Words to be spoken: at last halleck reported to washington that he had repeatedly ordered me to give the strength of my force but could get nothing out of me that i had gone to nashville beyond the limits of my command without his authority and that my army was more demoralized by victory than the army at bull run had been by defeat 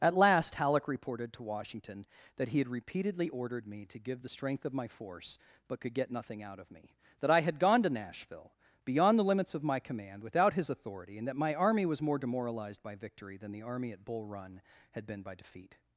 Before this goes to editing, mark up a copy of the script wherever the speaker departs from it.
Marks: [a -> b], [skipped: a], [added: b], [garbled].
at last halleck reported to washington that he had repeatedly ordered me to give the strength of my force but could get nothing out of me that i had gone to nashville beyond the limits of my command without his authority and that my army was more demoralized by victory than the army at bull run had been by defeat